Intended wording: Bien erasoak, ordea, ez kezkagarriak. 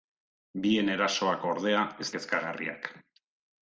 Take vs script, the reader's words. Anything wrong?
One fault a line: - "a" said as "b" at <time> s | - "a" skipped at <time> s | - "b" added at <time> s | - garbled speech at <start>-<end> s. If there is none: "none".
none